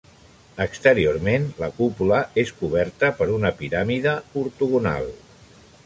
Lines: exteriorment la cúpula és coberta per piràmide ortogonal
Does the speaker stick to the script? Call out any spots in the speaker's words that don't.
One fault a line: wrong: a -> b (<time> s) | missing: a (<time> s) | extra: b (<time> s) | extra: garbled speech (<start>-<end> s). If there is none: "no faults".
extra: una (3.4 s)